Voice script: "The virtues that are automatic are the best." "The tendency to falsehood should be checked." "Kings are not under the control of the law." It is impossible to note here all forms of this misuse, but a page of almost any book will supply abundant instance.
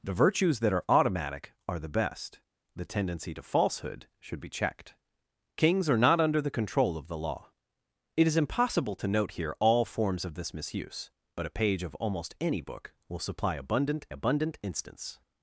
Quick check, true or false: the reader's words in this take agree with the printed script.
false